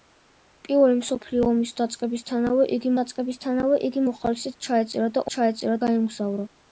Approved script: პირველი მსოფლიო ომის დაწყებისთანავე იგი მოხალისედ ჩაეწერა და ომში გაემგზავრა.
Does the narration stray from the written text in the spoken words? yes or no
yes